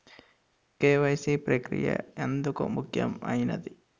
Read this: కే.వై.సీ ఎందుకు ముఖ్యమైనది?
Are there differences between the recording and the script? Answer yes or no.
yes